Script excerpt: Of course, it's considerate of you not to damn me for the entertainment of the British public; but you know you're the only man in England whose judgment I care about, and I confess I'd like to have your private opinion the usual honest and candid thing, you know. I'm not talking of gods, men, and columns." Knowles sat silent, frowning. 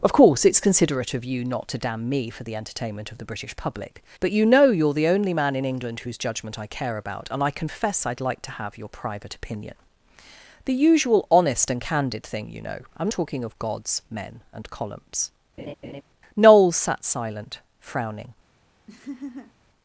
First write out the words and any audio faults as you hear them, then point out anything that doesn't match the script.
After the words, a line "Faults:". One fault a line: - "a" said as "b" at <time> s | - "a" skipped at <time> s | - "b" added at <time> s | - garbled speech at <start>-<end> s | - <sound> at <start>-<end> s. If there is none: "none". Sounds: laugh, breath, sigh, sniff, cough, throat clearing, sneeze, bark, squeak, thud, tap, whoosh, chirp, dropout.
Of course, it's considerate of you not to damn me for the entertainment of the British public; but you know you're the only man in England whose judgment I care about, and I confess I'd like to have your private opinion the usual honest and candid thing, you know. I'm talking of gods, men, and columns." Knowles sat silent, frowning.
Faults:
- "not" skipped at 13.1 s
- laugh at 15.6-16.0 s
- laugh at 18.9-19.5 s